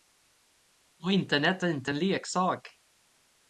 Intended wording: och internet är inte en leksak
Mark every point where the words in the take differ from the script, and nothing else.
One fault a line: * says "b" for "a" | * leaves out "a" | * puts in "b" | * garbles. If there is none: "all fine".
all fine